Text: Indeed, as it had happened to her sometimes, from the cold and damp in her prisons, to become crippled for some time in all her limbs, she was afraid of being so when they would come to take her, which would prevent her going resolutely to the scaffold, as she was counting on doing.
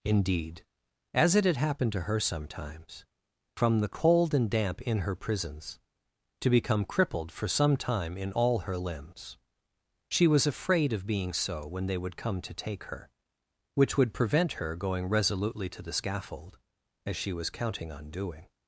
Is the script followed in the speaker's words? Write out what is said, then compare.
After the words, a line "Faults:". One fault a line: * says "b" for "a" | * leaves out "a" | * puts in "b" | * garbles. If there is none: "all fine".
Indeed, as it had happened to her sometimes, from the cold and damp in her prisons, to become crippled for some time in all her limbs, she was afraid of being so when they would come to take her, which would prevent her going resolutely to the scaffold, as she was counting on doing.
Faults:
all fine